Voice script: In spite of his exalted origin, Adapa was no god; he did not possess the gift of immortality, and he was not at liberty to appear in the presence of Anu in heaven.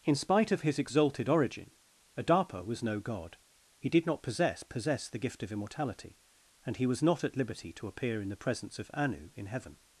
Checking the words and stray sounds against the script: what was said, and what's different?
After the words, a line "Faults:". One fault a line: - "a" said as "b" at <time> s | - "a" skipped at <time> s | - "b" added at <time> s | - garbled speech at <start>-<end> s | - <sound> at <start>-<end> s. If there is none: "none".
In spite of his exalted origin, Adapa was no god; he did not possess possess the gift of immortality, and he was not at liberty to appear in the presence of Anu in heaven.
Faults:
- "possess" added at 4.6 s